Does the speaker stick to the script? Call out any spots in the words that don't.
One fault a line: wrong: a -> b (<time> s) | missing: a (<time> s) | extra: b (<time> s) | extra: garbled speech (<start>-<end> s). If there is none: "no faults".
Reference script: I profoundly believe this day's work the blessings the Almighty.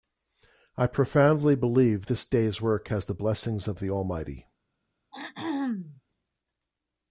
extra: has (2.9 s)
extra: of (3.7 s)